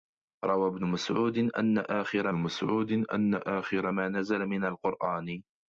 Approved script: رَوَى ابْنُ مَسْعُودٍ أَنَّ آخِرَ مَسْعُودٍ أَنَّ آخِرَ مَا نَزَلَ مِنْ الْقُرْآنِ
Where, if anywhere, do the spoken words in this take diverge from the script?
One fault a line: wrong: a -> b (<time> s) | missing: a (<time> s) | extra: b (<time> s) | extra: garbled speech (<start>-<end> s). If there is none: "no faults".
no faults